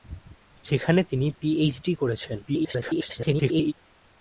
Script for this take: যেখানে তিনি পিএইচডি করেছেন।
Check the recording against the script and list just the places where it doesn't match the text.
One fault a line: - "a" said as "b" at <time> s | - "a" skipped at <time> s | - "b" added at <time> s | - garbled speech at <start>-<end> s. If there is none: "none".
- garbled speech at 2.5-3.7 s